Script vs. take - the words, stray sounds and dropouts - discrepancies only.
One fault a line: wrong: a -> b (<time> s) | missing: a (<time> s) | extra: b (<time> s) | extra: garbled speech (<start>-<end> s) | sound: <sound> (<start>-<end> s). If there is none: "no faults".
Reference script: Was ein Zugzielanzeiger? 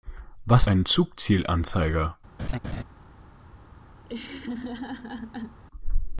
sound: laugh (2.4-2.8 s)
sound: laugh (4.0-5.6 s)